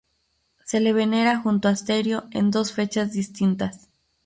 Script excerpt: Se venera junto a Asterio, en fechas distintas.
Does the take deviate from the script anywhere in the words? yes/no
yes